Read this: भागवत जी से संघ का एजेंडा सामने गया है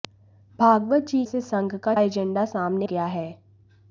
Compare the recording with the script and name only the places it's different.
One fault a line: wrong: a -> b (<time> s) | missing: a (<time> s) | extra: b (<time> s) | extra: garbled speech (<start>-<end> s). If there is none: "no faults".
no faults